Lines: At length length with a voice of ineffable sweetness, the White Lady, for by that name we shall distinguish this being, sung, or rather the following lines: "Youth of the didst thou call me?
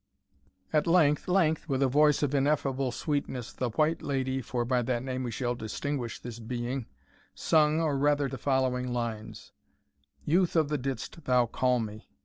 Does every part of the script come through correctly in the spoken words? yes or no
yes